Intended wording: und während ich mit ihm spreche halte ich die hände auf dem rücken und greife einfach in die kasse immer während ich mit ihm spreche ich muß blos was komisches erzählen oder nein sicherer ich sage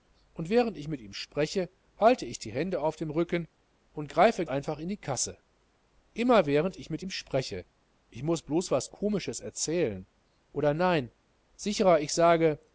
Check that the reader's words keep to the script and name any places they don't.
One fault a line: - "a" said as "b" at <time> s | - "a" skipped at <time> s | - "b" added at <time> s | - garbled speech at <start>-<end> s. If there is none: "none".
none